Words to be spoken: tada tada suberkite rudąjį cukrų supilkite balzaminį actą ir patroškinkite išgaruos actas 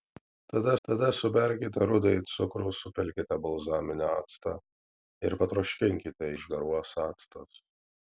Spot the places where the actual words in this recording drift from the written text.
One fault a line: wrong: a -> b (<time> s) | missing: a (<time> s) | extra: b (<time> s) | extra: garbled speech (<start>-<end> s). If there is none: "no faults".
no faults